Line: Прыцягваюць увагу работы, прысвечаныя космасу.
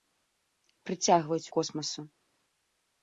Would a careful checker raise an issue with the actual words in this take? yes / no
yes